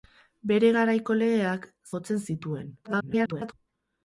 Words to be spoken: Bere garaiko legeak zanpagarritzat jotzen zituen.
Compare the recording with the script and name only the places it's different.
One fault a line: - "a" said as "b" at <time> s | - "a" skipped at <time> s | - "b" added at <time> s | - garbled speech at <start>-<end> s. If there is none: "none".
- "zanpagarritzat" skipped at 1.7 s
- garbled speech at 2.8-3.5 s